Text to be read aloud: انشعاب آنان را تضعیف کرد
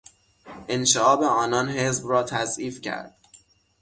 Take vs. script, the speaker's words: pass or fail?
fail